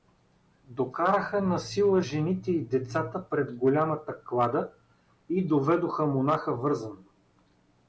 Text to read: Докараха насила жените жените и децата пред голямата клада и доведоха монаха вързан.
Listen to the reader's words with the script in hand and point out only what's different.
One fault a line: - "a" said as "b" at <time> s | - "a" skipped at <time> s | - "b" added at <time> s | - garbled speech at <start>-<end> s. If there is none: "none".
- "жените" skipped at 2.5 s